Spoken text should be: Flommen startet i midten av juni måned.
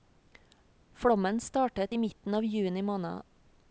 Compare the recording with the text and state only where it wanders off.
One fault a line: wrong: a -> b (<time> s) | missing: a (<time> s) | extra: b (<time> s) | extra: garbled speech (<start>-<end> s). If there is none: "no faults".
no faults